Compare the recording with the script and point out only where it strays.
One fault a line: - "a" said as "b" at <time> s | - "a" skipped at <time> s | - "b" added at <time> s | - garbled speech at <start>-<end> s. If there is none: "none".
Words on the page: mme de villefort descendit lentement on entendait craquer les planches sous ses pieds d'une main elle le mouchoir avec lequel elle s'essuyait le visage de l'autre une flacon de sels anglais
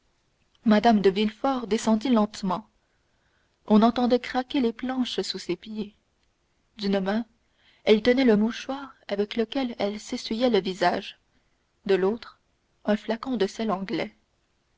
- "tenait" added at 8.0 s
- "une" said as "un" at 12.8 s